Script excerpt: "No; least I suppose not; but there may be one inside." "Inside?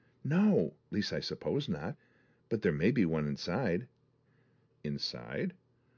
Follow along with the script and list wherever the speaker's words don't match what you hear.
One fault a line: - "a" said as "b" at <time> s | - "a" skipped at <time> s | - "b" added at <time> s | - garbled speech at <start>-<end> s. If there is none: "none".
none